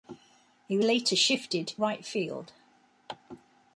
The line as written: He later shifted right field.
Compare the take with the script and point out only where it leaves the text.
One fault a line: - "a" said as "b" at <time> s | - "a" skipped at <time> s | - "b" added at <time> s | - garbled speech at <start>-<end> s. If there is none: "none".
none